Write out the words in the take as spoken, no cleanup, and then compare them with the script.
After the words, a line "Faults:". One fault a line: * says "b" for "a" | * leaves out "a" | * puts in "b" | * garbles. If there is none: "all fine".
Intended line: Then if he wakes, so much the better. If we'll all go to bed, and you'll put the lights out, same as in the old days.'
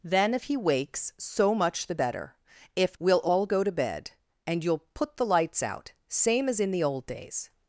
Then if he wakes, so much the better. If we'll all go to bed, and you'll put the lights out, same as in the old days.'
Faults:
all fine